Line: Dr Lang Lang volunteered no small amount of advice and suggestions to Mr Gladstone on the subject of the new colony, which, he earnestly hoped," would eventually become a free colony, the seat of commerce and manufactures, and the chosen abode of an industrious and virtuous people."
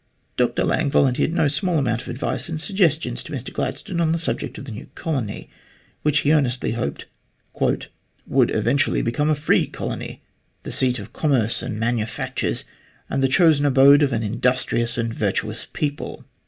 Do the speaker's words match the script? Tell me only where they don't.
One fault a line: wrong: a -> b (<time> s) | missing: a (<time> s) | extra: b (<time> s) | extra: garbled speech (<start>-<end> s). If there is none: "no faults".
missing: Lang (0.9 s)